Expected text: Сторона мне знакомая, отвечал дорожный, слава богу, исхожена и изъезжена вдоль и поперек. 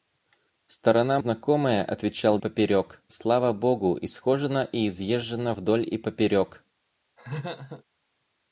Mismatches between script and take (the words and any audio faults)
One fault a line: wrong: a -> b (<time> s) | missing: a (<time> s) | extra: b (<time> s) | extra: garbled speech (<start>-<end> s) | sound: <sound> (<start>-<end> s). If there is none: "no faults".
missing: мне (1.2 s)
wrong: дорожный -> поперек (2.4 s)
sound: laugh (7.2-7.8 s)